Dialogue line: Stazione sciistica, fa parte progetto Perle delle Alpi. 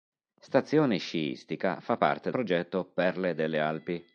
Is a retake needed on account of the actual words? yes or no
no